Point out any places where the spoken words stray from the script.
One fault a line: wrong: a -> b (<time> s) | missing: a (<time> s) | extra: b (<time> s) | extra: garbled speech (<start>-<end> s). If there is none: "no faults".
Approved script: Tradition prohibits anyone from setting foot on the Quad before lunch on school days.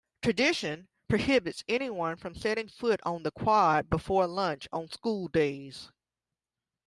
no faults